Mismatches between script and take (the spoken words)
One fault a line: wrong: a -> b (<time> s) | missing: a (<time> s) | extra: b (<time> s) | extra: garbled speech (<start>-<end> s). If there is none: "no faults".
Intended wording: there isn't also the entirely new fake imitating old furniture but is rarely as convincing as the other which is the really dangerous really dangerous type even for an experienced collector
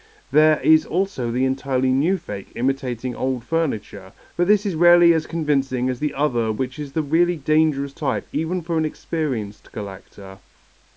wrong: isn't -> is (0.6 s)
extra: this (4.5 s)
missing: really dangerous (7.9 s)